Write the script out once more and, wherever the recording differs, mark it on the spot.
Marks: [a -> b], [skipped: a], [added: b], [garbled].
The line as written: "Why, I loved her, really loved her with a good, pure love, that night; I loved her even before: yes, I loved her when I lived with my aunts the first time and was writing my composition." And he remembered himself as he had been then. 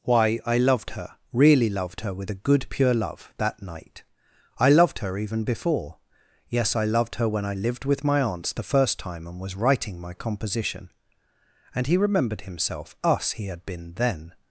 "Why, I loved her, really loved her with a good, pure love, that night; I loved her even before: yes, I loved her when I lived with my aunts the first time and was writing my composition." And he remembered himself [as -> us] he had been then.